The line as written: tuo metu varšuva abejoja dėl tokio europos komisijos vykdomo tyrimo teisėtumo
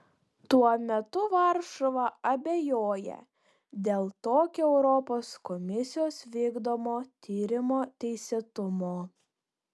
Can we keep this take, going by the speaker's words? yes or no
yes